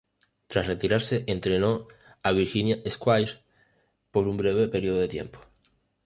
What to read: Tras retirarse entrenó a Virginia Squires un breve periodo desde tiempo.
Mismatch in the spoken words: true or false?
true